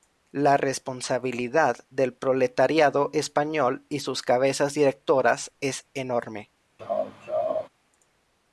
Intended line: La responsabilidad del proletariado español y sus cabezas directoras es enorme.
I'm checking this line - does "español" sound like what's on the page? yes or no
yes